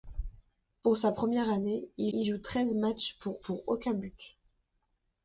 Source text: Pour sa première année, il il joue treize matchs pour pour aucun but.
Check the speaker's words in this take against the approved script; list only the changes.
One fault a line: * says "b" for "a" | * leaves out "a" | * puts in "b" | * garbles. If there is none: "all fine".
all fine